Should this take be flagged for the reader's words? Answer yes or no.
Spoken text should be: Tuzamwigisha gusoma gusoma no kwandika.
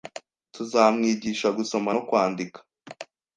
yes